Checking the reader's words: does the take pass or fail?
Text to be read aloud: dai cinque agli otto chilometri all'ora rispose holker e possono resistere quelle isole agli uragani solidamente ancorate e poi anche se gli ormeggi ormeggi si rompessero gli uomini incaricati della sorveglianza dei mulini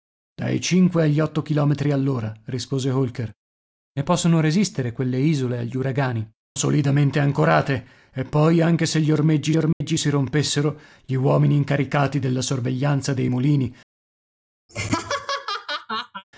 pass